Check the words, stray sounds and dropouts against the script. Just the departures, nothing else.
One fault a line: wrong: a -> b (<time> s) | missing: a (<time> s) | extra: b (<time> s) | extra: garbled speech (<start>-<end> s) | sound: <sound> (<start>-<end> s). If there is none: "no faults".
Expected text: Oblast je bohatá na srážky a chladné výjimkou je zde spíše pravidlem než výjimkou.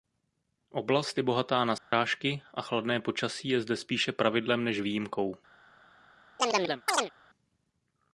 sound: dropout (1.8-1.9 s)
wrong: výjimkou -> počasí (3.0 s)
sound: chirp (6.4-7.1 s)